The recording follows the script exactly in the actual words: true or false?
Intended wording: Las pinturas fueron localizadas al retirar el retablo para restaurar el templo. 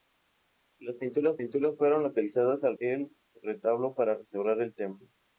false